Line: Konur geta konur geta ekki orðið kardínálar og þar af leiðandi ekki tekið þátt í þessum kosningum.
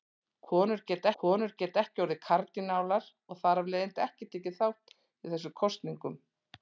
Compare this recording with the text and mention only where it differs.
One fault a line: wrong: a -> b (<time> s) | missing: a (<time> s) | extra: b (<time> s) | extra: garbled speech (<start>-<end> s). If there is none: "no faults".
no faults